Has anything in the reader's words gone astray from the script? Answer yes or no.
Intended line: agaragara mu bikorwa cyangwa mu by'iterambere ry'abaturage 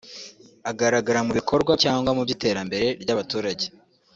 no